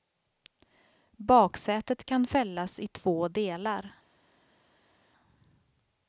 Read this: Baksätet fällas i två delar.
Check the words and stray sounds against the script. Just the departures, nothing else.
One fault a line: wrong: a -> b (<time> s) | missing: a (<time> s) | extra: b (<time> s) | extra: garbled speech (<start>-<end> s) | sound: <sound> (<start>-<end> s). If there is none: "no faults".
extra: kan (2.0 s)